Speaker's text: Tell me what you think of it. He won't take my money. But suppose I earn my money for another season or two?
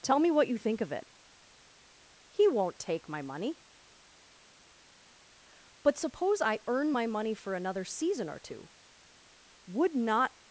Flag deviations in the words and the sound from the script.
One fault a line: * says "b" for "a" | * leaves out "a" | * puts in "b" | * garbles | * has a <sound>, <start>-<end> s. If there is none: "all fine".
* puts in "Would not"